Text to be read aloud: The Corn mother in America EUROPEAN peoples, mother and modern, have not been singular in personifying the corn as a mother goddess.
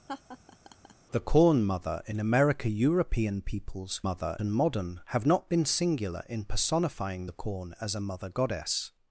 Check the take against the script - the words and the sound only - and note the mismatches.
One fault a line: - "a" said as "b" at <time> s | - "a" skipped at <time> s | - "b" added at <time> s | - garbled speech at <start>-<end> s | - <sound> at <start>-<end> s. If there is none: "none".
- laugh at 0.1-0.9 s